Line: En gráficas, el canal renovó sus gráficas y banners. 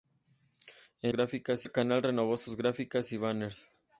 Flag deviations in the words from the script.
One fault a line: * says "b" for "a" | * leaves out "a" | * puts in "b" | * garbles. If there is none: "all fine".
all fine